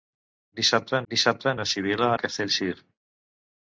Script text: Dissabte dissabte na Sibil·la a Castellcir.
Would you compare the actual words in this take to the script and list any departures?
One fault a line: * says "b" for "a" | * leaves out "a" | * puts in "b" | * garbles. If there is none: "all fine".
all fine